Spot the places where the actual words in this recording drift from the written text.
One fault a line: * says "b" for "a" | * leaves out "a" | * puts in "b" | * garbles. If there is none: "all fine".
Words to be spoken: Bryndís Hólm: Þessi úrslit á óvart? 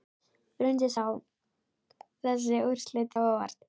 all fine